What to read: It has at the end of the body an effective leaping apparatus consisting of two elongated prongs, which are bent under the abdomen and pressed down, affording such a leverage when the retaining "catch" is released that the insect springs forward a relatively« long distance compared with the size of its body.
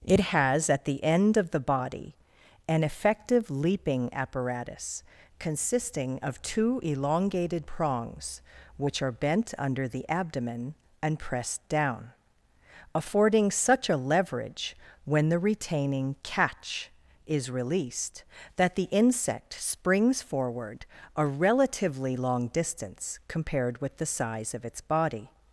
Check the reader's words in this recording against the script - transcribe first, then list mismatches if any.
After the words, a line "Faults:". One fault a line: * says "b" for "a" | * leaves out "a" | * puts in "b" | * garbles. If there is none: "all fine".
It has at the end of the body an effective leaping apparatus consisting of two elongated prongs, which are bent under the abdomen and pressed down, affording such a leverage when the retaining "catch" is released that the insect springs forward a relatively« long distance compared with the size of its body.
Faults:
all fine